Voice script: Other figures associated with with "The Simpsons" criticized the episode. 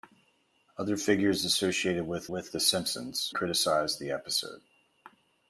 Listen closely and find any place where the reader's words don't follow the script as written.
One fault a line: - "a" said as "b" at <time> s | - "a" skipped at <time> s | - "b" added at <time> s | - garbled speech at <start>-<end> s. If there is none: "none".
none